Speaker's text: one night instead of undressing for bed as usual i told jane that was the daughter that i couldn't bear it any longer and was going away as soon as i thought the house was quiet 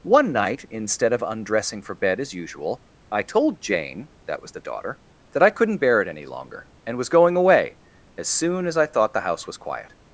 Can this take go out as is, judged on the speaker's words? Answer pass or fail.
pass